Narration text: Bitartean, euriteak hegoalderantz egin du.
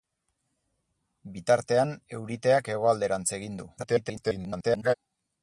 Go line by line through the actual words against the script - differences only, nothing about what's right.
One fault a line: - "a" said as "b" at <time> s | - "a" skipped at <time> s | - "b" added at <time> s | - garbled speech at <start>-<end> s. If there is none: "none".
- garbled speech at 3.8-4.9 s